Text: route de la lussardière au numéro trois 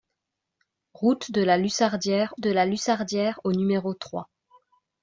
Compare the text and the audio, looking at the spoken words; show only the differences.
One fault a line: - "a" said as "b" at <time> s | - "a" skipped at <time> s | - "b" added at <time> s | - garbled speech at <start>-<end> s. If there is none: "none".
- "de la lussardière" added at 2.4 s